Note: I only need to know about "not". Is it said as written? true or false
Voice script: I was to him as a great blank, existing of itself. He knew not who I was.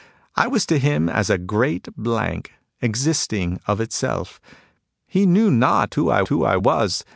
true